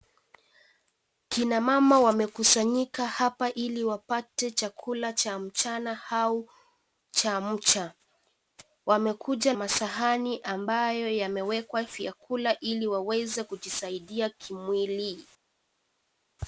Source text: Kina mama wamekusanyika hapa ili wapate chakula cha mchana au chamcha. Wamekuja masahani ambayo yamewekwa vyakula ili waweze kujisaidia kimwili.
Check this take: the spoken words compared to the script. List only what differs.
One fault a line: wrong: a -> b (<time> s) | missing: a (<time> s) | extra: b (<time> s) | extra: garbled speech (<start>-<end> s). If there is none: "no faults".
no faults